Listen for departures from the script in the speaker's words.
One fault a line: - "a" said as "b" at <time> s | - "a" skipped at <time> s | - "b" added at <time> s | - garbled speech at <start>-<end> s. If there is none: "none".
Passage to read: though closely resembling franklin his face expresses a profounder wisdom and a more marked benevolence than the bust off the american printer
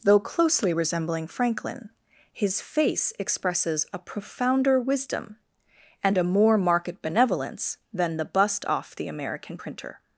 none